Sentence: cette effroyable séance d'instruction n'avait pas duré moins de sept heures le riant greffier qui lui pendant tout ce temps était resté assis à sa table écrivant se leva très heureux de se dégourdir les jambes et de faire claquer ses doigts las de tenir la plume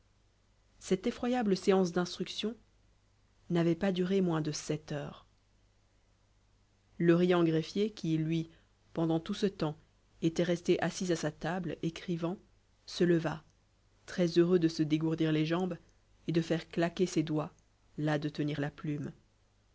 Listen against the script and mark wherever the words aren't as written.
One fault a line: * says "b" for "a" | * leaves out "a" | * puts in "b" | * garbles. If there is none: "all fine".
all fine